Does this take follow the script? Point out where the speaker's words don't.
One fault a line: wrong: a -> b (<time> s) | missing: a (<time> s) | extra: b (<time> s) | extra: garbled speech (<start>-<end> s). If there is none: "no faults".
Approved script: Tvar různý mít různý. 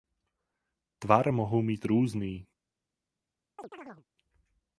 wrong: různý -> mohou (1.3 s)